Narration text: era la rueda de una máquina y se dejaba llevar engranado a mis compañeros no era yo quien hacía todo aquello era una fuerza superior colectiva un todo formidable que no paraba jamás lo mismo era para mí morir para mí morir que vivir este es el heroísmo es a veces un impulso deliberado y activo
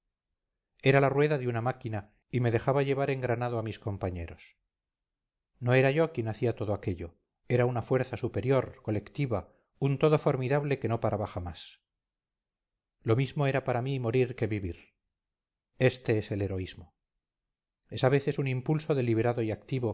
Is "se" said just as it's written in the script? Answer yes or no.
no